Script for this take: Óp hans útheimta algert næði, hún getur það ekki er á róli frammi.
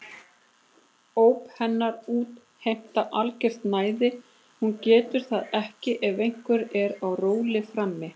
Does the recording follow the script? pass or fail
fail